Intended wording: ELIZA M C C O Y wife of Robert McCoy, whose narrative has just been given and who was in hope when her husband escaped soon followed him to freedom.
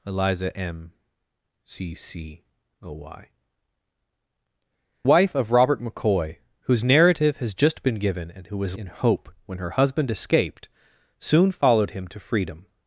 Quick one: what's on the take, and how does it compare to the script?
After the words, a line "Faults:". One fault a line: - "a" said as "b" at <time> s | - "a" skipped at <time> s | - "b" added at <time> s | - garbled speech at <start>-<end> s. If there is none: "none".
ELIZA M C C O Y wife of Robert McCoy, whose narrative has just been given and who was in hope when her husband escaped soon followed him to freedom.
Faults:
none